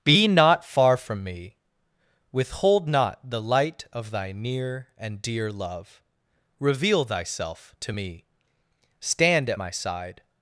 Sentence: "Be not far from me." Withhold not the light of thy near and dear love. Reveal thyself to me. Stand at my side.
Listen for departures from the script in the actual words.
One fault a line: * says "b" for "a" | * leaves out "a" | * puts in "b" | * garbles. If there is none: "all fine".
all fine